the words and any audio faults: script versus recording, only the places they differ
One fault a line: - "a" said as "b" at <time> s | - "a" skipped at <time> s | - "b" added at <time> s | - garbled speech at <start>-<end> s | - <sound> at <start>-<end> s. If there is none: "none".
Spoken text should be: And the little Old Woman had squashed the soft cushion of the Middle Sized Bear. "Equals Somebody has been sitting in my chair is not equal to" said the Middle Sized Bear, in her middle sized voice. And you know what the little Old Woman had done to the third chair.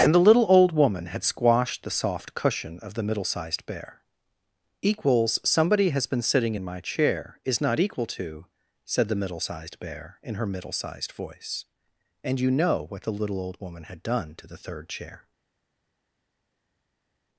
none